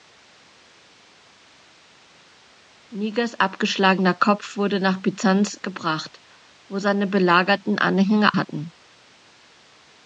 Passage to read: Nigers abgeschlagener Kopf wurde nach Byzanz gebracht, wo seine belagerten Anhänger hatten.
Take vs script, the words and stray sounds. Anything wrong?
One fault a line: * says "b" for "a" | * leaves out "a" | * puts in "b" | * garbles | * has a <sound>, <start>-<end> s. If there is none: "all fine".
all fine